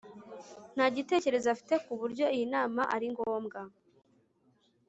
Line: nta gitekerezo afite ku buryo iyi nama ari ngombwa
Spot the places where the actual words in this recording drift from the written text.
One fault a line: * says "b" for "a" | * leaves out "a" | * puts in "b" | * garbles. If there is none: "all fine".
all fine